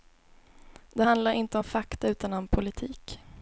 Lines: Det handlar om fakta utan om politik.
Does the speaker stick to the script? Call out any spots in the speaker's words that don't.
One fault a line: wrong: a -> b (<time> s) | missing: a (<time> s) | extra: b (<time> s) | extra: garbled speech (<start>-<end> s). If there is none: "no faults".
extra: inte (1.3 s)